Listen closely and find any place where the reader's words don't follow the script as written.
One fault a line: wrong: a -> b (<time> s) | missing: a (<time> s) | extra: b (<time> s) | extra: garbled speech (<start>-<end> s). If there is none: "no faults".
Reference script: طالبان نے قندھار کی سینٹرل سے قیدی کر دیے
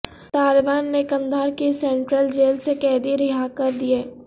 extra: جیل (2.3 s)
extra: رہا (3.2 s)